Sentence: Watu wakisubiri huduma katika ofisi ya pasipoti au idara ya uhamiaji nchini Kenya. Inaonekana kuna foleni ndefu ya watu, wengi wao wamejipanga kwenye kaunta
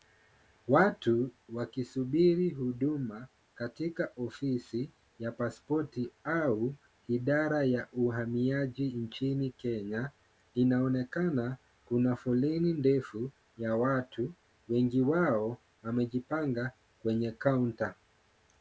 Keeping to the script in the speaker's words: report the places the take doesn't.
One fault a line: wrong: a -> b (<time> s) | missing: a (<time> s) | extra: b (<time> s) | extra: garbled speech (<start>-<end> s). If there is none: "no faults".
no faults